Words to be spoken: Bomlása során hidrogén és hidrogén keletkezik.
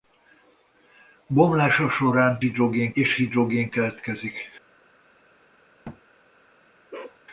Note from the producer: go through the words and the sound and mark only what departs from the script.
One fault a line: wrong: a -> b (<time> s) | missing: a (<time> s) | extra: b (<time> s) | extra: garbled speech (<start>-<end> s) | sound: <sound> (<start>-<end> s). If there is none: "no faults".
sound: thud (5.8-6.0 s)
sound: bark (6.9-7.2 s)